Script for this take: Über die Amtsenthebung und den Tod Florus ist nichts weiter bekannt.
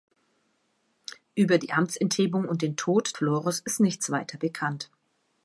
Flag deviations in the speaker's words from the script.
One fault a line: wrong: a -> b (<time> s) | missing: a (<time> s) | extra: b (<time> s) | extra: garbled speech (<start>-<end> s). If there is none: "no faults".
no faults